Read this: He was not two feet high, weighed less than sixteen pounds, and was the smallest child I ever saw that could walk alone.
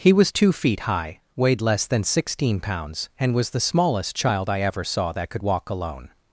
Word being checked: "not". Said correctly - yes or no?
no